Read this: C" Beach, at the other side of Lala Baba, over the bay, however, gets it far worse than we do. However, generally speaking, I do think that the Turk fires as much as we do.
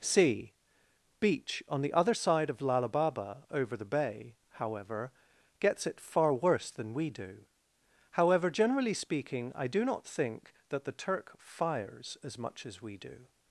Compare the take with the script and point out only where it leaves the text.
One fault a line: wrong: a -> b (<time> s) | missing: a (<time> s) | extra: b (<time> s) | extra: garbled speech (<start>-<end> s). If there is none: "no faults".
wrong: at -> on (1.7 s)
extra: not (9.8 s)